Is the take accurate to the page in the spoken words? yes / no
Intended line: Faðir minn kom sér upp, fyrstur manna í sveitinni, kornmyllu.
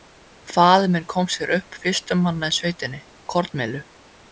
yes